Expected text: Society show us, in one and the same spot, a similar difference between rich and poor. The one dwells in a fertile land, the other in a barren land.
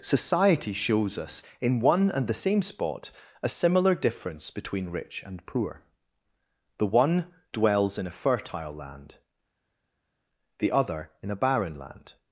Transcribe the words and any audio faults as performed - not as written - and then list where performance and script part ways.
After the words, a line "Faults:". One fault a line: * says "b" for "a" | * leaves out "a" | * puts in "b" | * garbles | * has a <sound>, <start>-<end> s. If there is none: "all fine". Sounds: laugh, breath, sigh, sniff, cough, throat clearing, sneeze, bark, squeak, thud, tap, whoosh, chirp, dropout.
Society shows us, in one and the same spot, a similar difference between rich and poor. The one dwells in a fertile land, the other in a barren land.
Faults:
* says "shows" for "show"